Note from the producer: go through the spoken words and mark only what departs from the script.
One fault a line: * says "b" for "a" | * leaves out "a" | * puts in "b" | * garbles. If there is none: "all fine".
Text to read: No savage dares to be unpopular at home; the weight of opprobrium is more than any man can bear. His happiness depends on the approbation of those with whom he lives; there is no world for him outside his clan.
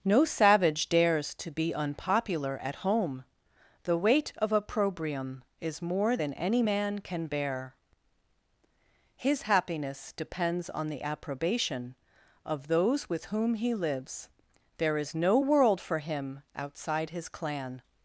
all fine